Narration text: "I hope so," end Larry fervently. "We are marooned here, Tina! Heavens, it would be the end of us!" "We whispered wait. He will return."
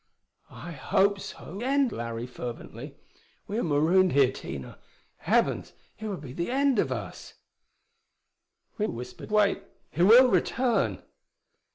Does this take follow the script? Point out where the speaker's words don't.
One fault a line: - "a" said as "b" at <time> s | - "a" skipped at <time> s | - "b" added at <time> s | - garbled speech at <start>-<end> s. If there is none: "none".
none